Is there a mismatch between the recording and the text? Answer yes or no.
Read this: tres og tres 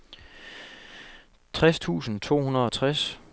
yes